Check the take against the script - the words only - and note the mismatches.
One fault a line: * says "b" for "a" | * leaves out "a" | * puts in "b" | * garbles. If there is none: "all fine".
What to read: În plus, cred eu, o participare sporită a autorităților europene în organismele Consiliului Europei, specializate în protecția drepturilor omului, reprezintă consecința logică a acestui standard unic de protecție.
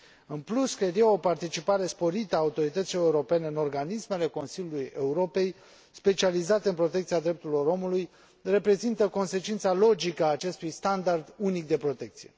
all fine